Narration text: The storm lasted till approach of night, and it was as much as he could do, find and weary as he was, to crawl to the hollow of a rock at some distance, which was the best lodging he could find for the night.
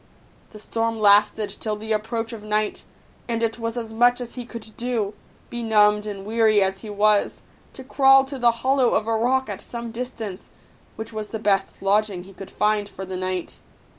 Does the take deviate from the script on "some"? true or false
false